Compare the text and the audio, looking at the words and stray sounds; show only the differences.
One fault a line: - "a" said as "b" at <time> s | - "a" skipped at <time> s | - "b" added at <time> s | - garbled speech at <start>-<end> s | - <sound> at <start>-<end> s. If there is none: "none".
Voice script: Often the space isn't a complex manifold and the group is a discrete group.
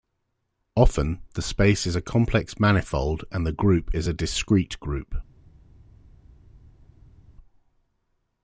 - "isn't" said as "is" at 1.9 s